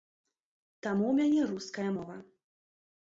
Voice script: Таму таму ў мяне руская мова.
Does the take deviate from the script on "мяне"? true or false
false